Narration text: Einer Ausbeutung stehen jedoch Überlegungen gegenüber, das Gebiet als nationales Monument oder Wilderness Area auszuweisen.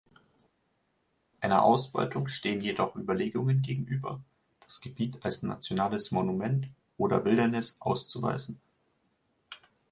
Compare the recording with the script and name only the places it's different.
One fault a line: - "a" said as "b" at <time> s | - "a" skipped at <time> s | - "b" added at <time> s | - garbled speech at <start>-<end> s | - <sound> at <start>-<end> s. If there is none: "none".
- "Area" skipped at 7.7 s